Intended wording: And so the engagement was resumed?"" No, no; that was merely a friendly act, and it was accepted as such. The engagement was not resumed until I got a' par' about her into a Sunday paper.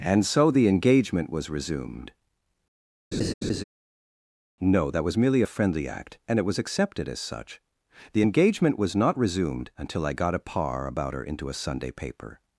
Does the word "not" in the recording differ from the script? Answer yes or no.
no